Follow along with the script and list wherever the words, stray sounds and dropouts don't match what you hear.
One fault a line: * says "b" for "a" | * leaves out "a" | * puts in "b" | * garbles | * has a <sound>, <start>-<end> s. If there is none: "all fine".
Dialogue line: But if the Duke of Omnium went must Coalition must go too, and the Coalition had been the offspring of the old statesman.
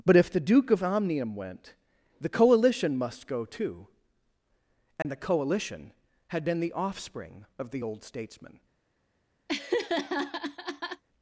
* says "the" for "must"
* has a dropout, 5.0-5.1 s
* has a laugh, 9.5-11.0 s